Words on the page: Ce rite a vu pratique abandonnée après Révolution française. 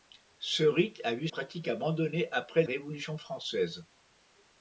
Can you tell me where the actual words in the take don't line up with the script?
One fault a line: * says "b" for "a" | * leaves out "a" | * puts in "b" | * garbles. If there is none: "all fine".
all fine